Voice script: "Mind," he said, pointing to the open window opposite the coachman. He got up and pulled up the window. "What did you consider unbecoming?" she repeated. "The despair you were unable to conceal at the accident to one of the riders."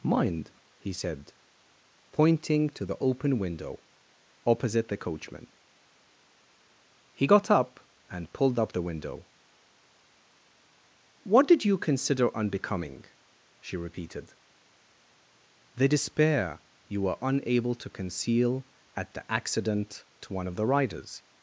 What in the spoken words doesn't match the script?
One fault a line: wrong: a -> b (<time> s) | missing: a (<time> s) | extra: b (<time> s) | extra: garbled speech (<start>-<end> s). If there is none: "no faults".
no faults